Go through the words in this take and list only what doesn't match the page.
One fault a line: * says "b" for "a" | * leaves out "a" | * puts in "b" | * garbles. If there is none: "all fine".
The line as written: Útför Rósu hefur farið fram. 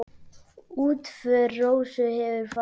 all fine